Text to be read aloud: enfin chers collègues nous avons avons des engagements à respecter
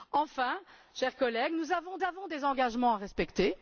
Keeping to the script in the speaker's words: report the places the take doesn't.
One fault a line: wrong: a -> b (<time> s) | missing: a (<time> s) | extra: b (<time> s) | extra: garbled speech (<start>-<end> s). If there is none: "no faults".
no faults